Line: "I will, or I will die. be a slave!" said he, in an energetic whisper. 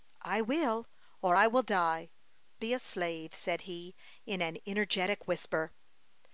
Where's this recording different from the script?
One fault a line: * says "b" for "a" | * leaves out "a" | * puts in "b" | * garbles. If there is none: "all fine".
all fine